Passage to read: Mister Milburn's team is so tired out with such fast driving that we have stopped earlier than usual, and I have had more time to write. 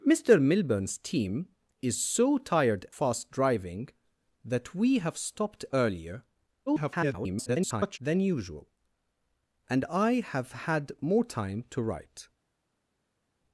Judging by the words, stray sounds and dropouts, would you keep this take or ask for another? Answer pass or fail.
fail